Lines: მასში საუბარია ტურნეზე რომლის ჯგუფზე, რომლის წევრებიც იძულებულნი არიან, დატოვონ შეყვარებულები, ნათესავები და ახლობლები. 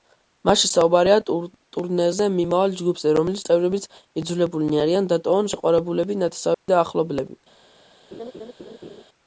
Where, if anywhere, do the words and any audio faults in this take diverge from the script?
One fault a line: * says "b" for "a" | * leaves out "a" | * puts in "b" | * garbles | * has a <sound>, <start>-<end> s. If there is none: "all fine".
* says "მიმავალ" for "რომლის"
* has a dropout, 6.5-6.7 s
* has a laugh, 8.1-9.0 s